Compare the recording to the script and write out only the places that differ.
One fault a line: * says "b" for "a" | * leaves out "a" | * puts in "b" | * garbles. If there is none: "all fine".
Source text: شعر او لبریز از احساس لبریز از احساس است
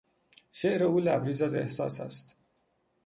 * leaves out "لبریز از احساس"